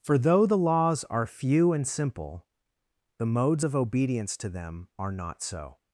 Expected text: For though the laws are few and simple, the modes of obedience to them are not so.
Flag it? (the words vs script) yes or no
no